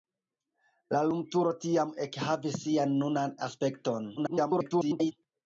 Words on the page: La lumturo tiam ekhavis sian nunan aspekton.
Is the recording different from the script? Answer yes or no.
yes